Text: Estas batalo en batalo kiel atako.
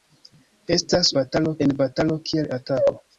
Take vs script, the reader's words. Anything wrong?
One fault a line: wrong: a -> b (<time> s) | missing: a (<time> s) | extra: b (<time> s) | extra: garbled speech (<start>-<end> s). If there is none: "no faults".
no faults